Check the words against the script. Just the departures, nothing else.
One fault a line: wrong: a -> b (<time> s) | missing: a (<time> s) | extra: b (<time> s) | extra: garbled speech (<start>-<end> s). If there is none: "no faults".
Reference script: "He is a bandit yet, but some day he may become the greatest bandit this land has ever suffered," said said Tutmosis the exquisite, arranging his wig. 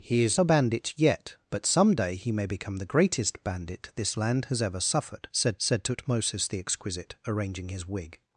no faults